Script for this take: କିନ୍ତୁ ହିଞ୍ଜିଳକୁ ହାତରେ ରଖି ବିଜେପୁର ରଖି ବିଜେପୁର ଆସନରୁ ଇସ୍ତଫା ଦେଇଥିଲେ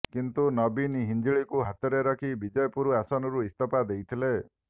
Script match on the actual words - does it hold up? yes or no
no